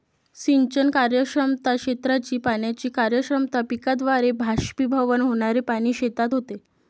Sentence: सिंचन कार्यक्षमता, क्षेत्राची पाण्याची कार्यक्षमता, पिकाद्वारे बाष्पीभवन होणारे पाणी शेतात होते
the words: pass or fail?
pass